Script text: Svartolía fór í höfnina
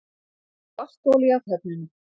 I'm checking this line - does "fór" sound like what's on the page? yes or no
no